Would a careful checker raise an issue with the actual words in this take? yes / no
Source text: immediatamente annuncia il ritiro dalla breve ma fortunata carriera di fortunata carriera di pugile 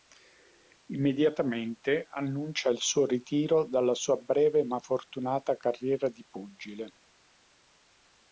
yes